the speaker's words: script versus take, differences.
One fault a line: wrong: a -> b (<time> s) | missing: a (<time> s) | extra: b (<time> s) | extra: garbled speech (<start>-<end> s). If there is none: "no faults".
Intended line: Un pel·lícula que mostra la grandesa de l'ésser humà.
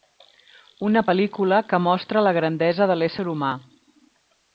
wrong: Un -> Una (0.9 s)